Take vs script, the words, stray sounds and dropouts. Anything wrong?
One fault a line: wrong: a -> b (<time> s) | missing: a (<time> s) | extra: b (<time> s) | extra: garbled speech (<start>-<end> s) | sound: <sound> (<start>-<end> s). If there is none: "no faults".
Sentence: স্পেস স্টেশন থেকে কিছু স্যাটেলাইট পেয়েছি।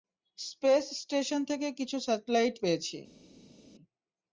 no faults